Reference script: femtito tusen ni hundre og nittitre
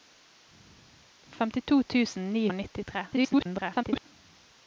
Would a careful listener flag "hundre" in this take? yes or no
yes